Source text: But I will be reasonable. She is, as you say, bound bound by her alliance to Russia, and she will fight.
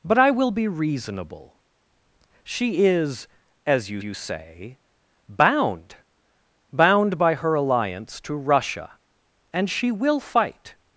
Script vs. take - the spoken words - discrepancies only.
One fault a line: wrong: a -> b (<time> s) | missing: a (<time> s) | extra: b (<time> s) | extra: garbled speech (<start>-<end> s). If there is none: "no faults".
extra: you (4.0 s)